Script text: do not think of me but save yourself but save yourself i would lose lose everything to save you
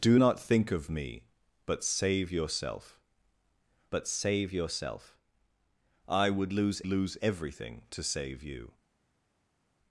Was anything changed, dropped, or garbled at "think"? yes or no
no